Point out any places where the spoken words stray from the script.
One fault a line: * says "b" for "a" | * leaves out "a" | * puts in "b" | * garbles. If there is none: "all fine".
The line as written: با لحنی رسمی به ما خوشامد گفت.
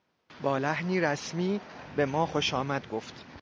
all fine